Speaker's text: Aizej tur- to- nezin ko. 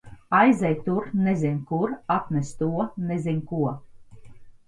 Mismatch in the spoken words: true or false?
true